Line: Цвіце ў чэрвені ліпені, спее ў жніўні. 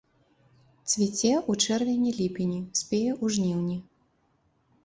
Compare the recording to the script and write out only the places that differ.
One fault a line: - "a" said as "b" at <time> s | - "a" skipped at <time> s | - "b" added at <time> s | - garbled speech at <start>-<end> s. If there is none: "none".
none